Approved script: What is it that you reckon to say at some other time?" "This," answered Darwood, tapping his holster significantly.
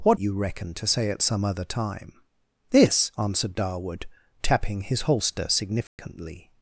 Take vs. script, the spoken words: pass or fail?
fail